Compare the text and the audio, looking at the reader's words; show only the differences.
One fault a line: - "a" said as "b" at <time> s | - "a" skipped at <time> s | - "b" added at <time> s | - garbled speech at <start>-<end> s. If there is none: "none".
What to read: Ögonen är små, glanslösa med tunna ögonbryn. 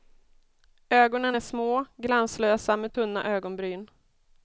none